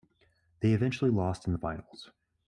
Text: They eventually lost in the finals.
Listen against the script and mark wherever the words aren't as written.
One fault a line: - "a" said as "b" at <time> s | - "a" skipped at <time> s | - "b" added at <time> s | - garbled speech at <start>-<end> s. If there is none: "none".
none